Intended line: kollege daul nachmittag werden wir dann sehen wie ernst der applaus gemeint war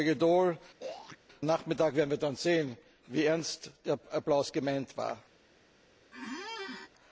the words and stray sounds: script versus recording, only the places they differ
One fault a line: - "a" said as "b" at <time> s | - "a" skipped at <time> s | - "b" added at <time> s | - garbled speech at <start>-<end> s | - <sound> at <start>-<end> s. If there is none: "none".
- throat clearing at 0.8-1.2 s
- squeak at 6.1-6.9 s